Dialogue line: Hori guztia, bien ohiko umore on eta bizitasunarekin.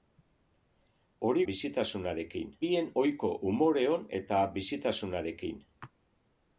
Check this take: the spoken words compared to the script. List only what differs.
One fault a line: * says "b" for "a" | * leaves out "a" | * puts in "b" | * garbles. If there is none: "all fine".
* says "bizitasunarekin" for "guztia"